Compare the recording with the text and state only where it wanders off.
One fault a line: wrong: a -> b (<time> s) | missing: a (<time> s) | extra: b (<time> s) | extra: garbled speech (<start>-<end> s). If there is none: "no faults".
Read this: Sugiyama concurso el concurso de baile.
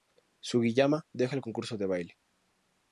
wrong: concurso -> deja (1.1 s)